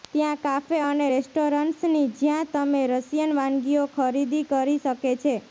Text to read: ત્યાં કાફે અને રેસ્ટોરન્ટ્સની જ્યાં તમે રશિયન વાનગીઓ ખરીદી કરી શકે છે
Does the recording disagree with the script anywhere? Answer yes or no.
no